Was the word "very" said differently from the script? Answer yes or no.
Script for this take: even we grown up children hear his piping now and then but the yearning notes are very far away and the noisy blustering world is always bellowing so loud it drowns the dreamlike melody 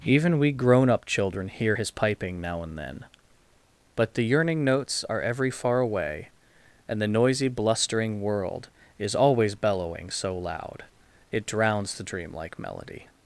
yes